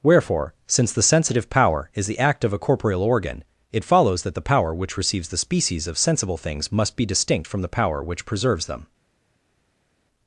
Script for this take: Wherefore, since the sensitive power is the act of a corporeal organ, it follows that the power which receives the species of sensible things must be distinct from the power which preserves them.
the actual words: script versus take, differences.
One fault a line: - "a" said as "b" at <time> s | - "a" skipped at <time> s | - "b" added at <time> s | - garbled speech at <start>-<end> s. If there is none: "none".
none